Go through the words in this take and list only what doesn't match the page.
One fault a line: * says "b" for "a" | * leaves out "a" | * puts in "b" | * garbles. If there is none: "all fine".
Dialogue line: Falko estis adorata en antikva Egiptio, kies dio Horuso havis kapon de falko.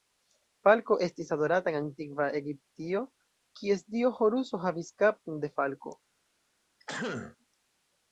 all fine